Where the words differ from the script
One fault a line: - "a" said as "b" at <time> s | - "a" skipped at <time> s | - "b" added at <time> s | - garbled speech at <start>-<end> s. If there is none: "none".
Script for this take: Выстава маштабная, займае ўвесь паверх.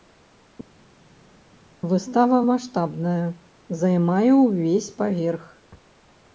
none